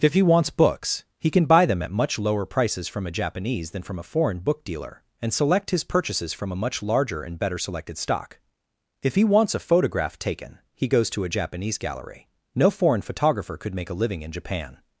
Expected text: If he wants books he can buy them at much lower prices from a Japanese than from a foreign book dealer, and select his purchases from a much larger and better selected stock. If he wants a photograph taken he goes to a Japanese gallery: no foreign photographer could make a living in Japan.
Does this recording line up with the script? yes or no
yes